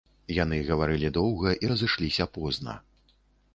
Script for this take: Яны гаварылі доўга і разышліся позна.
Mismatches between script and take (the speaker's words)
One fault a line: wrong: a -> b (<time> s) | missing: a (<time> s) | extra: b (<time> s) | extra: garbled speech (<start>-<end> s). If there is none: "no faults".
no faults